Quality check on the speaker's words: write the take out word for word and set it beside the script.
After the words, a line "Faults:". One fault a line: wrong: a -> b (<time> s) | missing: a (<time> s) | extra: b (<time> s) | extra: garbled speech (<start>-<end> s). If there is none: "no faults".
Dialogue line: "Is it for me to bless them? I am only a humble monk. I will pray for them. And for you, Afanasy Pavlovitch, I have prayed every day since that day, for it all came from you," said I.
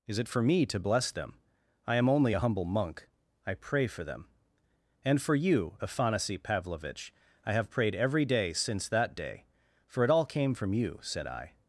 "Is it for me to bless them? I am only a humble monk. I pray for them. And for you, Afanasy Pavlovitch, I have prayed every day since that day, for it all came from you," said I.
Faults:
missing: will (3.5 s)